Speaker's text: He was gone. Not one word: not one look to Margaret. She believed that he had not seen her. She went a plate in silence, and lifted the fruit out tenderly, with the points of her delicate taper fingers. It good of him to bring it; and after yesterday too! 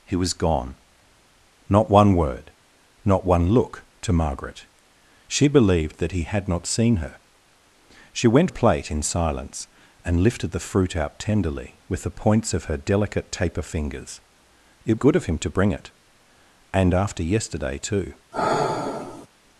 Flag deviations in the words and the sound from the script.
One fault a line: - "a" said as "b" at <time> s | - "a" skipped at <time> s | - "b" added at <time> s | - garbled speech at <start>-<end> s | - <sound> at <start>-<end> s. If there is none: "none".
- sigh at 18.3-19.3 s